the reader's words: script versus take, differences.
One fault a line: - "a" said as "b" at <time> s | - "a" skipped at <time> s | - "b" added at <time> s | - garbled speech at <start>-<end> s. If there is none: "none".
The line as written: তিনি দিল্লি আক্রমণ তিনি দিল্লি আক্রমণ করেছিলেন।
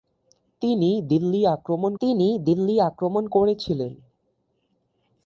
none